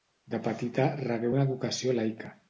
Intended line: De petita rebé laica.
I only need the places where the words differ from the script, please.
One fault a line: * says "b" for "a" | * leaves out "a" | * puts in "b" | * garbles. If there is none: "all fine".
* puts in "una educació"